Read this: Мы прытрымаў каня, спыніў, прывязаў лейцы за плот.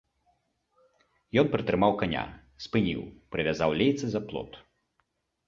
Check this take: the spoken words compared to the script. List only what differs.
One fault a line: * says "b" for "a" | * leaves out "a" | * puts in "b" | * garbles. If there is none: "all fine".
* says "Ён" for "Мы"